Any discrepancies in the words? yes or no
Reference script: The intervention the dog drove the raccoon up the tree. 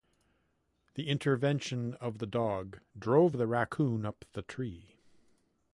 yes